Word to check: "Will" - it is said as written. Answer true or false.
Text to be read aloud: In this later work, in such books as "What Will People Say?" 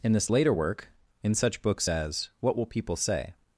true